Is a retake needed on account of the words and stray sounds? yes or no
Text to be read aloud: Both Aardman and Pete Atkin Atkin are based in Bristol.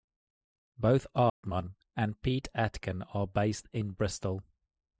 yes